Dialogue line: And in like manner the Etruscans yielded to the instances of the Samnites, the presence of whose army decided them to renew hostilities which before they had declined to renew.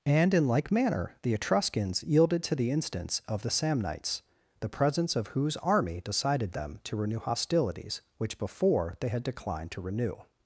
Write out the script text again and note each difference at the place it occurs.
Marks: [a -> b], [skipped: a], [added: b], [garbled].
And in like manner the Etruscans yielded to the [instances -> instance] of the Samnites, the presence of whose army decided them to renew hostilities which before they had declined to renew.